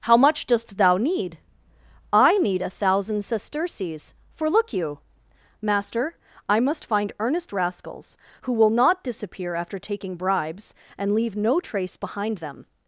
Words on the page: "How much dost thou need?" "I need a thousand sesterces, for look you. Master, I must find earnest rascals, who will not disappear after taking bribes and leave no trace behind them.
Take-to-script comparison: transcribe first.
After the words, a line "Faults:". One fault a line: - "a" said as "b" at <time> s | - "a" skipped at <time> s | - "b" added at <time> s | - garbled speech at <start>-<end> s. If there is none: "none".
"How much dost thou need?" "I need a thousand sesterces, for look you. Master, I must find earnest rascals, who will not disappear after taking bribes and leave no trace behind them.
Faults:
none